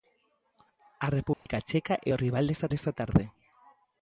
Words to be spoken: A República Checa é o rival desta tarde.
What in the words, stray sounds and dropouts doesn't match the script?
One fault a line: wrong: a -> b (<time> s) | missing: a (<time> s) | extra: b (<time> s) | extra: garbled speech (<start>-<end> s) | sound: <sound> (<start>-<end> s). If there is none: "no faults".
sound: dropout (1.3-1.5 s)
extra: desta (2.7 s)